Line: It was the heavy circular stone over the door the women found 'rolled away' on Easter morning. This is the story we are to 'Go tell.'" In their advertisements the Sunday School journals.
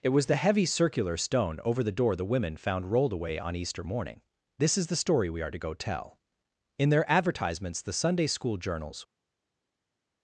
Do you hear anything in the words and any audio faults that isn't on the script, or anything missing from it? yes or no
no